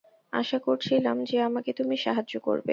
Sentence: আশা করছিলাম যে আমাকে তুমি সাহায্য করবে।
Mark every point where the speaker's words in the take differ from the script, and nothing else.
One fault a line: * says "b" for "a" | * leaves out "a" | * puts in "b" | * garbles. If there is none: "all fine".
all fine